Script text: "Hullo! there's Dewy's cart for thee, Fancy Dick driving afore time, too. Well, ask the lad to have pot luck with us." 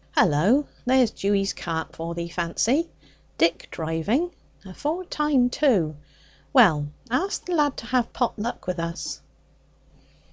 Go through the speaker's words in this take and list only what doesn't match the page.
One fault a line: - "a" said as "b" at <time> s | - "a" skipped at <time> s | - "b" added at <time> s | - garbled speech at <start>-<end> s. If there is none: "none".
none